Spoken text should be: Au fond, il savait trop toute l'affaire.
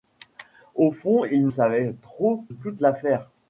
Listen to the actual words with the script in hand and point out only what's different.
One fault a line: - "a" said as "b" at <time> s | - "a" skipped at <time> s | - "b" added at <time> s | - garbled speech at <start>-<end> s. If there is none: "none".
none